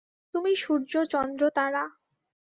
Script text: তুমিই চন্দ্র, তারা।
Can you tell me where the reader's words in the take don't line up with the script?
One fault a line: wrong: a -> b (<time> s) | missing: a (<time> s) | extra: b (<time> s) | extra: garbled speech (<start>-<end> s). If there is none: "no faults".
extra: সূর্য (0.6 s)